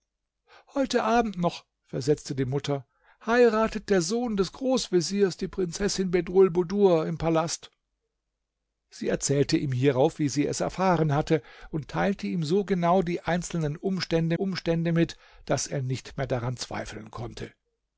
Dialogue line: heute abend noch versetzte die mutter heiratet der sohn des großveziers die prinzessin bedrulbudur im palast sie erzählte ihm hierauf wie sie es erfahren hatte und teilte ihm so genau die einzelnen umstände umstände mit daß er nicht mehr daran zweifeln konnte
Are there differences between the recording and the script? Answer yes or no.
no